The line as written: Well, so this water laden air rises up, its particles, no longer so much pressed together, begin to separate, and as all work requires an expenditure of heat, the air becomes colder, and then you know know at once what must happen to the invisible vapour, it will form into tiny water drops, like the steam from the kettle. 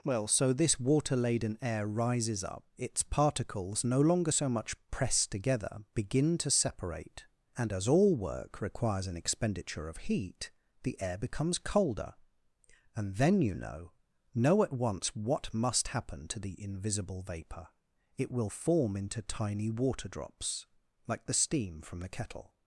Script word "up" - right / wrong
right